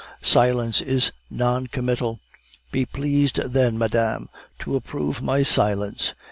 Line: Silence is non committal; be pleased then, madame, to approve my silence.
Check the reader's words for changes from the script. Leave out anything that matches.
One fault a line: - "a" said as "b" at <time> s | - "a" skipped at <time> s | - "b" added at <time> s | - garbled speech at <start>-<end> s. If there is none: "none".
none